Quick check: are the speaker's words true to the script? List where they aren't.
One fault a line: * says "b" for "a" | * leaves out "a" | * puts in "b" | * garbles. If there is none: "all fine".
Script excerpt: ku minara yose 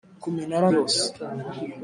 all fine